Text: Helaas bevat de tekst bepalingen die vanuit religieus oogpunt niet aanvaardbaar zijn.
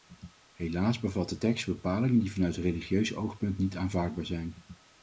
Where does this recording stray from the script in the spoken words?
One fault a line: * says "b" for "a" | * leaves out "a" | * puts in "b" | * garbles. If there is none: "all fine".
all fine